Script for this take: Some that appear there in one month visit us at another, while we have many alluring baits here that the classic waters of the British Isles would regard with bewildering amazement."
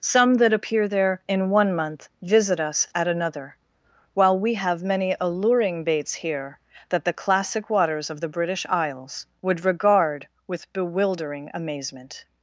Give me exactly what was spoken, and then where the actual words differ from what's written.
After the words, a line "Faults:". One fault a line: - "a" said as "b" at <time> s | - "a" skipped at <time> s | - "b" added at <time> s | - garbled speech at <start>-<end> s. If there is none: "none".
Some that appear there in one month visit us at another, while we have many alluring baits here that the classic waters of the British Isles would regard with bewildering amazement."
Faults:
none